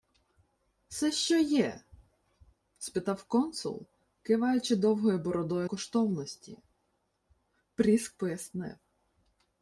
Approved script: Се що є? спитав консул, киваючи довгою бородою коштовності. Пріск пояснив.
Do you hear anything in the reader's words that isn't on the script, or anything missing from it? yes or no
no